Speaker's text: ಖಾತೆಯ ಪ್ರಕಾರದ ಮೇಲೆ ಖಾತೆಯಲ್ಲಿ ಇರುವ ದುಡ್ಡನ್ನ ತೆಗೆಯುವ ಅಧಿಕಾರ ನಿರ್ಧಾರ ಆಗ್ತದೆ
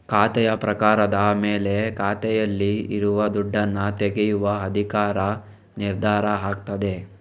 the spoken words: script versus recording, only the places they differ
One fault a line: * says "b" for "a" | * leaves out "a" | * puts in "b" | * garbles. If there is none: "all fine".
all fine